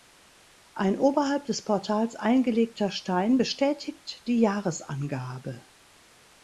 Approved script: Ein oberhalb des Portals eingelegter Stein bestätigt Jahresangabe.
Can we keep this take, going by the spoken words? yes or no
no